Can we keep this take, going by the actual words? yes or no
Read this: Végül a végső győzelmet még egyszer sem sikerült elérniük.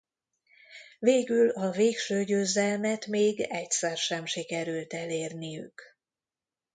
yes